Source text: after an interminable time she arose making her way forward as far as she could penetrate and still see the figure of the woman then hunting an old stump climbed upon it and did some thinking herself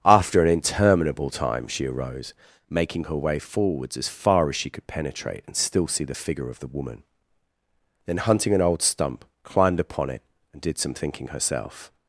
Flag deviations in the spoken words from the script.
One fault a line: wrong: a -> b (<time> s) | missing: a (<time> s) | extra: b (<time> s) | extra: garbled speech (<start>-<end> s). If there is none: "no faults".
wrong: forward -> forwards (3.4 s)